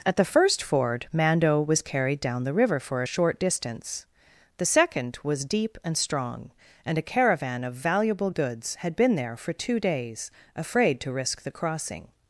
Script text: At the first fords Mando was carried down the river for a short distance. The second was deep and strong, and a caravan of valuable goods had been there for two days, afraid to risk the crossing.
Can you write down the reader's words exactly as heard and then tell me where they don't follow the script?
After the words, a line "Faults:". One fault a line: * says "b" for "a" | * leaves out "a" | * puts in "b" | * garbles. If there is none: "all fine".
At the first ford Mando was carried down the river for a short distance. The second was deep and strong, and a caravan of valuable goods had been there for two days, afraid to risk the crossing.
Faults:
* says "ford" for "fords"